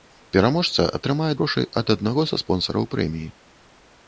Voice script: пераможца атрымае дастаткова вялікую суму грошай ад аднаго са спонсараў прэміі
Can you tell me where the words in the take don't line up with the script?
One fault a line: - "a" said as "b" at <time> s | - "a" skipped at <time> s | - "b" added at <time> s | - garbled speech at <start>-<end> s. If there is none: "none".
- "дастаткова вялікую суму" skipped at 1.3 s